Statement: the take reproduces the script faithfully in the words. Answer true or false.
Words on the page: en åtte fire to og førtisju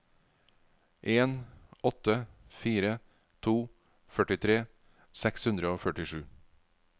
false